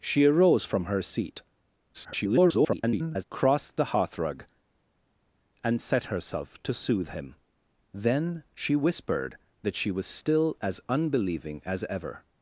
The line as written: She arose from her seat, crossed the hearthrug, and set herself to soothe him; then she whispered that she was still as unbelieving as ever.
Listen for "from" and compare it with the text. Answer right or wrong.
right